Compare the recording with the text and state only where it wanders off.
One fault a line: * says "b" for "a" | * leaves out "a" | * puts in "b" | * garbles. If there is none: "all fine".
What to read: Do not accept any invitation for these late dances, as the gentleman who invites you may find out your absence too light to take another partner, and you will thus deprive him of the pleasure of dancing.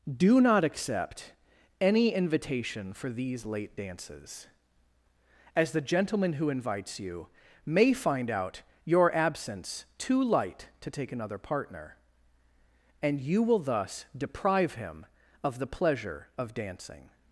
all fine